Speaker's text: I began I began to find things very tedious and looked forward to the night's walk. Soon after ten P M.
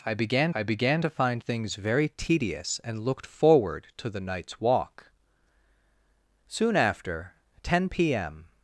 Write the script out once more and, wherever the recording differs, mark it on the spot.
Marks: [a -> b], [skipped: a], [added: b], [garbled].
I began I began to find things very tedious and looked forward to the night's walk. Soon after ten P M.